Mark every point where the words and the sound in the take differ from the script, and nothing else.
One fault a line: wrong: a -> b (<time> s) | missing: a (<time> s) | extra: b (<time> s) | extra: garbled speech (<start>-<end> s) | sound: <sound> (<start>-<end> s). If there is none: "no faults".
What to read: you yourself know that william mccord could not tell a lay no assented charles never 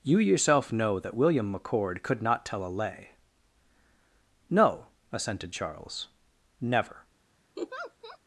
sound: laugh (7.6-8.2 s)